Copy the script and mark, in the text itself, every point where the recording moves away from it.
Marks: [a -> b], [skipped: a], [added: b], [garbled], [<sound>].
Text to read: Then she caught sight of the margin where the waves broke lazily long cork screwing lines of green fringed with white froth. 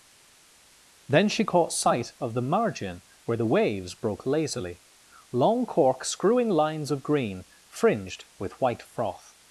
Then she caught sight of the margin where the waves broke lazily long cork screwing lines of green fringed with white froth.